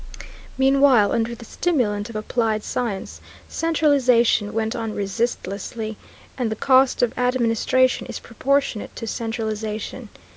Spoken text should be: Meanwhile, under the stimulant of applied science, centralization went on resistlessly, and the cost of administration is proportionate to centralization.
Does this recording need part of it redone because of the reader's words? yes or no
no